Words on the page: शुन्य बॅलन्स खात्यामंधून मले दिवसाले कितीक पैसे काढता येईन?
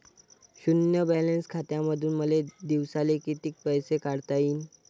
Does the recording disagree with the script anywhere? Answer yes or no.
no